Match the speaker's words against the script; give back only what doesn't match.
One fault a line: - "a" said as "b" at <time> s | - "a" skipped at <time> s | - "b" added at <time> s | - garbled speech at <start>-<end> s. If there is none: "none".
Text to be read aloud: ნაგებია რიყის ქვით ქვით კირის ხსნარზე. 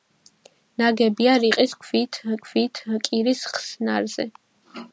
none